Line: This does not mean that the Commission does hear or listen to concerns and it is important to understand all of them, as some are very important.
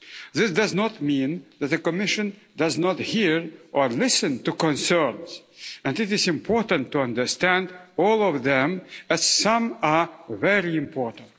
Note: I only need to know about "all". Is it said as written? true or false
true